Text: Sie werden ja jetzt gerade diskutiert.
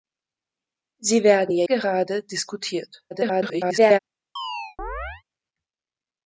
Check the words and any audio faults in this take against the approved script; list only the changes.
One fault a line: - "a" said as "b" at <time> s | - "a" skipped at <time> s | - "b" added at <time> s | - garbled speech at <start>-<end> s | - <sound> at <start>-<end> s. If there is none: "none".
- "jetzt" skipped at 1.7 s
- garbled speech at 3.1-4.0 s
- chirp at 4.4-5.2 s